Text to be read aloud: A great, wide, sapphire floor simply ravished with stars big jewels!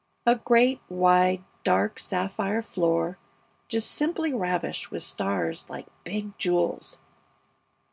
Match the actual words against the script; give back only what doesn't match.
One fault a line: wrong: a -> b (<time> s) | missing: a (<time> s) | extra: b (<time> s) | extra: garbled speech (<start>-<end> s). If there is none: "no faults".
extra: dark (1.6 s)
extra: just (3.7 s)
extra: like (5.7 s)